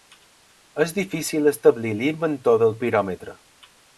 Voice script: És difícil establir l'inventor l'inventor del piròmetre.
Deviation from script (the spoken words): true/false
true